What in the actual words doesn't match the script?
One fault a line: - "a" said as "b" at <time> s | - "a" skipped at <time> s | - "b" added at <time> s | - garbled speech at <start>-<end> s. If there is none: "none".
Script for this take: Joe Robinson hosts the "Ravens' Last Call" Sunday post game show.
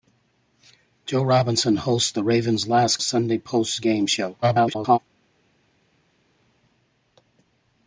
- "Call" skipped at 3.0 s
- garbled speech at 4.4-5.0 s